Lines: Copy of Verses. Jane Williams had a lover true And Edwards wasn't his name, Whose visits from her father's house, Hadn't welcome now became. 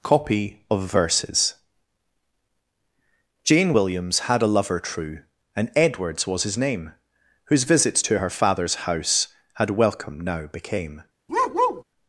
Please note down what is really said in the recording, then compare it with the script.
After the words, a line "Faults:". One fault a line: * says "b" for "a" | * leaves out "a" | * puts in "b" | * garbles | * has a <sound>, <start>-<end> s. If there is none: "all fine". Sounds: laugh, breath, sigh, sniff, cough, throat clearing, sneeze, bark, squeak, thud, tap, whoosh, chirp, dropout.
Copy of Verses. Jane Williams had a lover true And Edwards was his name, Whose visits to her father's house, Had welcome now became.
Faults:
* says "was" for "wasn't"
* says "to" for "from"
* says "Had" for "Hadn't"
* has a bark, 11.3-11.8 s